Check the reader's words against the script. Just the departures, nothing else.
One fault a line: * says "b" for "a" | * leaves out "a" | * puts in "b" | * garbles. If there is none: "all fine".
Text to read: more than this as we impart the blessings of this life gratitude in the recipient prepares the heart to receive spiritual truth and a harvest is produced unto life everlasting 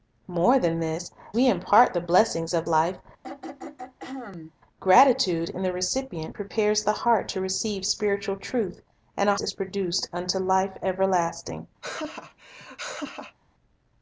* leaves out "as"
* leaves out "this"
* leaves out "harvest"